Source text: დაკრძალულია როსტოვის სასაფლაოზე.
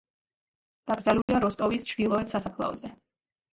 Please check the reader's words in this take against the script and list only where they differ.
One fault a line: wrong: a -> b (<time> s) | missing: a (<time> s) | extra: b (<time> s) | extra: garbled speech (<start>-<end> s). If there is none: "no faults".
extra: ჩრდილოეთ (1.9 s)